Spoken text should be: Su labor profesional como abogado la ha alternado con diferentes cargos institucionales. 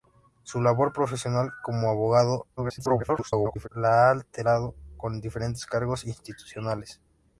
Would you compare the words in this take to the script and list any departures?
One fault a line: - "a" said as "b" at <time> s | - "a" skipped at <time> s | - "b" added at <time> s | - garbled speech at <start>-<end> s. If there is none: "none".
- garbled speech at 2.6-3.7 s